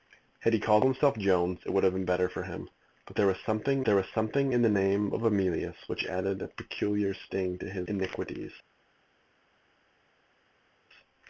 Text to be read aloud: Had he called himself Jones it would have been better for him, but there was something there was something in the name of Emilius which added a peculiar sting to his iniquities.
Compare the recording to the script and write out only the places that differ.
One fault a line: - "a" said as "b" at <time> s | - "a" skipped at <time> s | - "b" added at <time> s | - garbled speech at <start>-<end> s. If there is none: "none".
none